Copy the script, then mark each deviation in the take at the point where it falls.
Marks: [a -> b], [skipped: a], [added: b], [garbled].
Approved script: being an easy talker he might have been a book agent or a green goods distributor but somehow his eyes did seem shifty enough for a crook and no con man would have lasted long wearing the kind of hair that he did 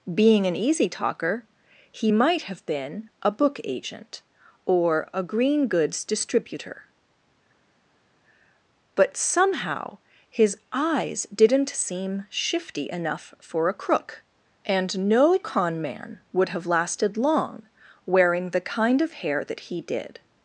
being an easy talker he might have been a book agent or a green goods distributor but somehow his eyes [did -> didn't] seem shifty enough for a crook and no con man would have lasted long wearing the kind of hair that he did